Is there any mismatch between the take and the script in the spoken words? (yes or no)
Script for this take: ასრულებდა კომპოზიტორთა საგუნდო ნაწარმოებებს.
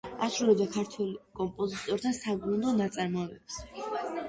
yes